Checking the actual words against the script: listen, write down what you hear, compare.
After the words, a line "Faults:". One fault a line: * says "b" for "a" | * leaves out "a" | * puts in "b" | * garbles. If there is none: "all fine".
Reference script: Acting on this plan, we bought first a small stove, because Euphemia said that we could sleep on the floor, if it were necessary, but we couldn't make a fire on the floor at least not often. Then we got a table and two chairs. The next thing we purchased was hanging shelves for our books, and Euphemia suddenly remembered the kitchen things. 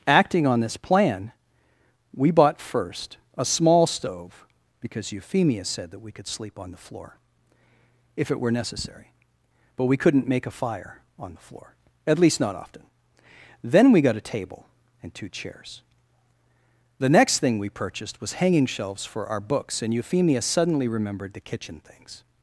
Acting on this plan, we bought first a small stove, because Euphemia said that we could sleep on the floor, if it were necessary, but we couldn't make a fire on the floor at least not often. Then we got a table and two chairs. The next thing we purchased was hanging shelves for our books, and Euphemia suddenly remembered the kitchen things.
Faults:
all fine